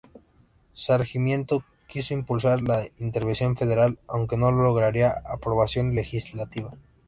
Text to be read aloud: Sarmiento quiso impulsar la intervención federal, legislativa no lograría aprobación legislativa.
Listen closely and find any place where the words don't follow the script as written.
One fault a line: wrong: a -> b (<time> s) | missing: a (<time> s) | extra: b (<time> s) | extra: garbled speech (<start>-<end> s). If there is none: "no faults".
wrong: legislativa -> aunque (4.1 s)